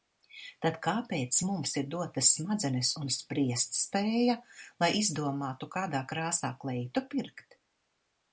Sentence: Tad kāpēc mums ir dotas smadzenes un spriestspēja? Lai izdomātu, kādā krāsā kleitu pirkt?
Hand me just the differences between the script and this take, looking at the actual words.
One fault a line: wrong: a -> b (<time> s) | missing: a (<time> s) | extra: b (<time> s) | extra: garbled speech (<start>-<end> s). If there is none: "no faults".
no faults